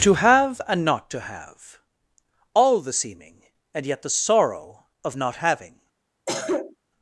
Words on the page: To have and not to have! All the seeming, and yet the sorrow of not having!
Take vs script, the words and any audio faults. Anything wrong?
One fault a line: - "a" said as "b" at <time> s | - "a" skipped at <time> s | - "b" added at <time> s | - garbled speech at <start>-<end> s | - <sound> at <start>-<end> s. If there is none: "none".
- cough at 6.3-6.8 s